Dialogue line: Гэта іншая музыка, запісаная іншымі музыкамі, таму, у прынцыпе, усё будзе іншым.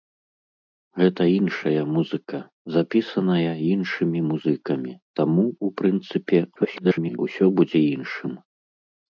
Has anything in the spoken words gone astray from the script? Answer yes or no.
yes